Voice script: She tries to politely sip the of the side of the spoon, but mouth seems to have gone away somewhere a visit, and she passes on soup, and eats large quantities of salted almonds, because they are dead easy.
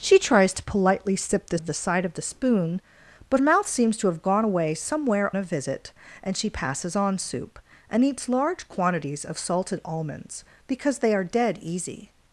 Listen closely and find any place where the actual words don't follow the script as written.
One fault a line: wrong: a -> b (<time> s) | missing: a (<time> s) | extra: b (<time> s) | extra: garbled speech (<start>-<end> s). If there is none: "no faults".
no faults